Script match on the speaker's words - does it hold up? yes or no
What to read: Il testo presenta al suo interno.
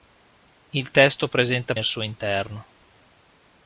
yes